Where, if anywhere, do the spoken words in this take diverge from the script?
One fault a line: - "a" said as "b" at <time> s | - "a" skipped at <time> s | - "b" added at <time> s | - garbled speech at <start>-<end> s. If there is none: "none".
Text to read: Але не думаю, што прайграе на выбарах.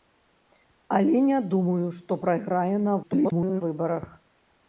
- garbled speech at 3.0-3.6 s